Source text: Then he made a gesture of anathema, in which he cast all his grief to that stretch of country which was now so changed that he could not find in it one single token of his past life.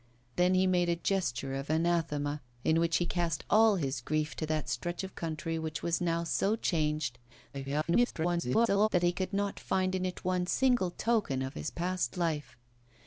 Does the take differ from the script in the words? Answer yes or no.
yes